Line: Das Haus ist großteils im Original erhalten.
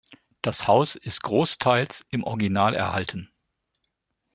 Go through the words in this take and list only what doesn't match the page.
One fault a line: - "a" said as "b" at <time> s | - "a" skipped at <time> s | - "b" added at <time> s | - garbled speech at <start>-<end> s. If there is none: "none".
none